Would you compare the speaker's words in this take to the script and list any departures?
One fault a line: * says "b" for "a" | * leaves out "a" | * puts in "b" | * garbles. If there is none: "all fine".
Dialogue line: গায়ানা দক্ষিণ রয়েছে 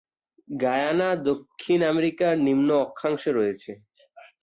* puts in "আমেরিকার নিম্ন অক্ষাংশে"